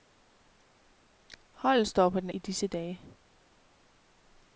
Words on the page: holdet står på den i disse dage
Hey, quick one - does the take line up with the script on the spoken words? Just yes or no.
yes